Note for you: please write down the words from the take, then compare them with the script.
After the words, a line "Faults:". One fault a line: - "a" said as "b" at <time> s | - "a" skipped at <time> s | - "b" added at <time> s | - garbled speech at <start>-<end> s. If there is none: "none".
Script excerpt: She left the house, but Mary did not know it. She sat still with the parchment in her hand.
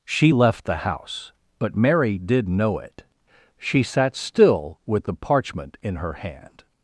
She left the house, but Mary did know it. She sat still with the parchment in her hand.
Faults:
- "not" skipped at 2.5 s